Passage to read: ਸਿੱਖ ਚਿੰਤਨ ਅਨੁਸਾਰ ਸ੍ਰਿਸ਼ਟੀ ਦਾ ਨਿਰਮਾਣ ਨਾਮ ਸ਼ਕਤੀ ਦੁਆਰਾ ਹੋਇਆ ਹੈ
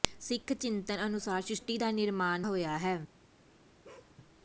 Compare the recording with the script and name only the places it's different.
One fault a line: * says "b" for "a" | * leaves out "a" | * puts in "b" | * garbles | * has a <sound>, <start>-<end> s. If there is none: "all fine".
* leaves out "ਨਾਮ ਸ਼ਕਤੀ ਦੁਆਰਾ"
* has a bark, 3.8-4.1 s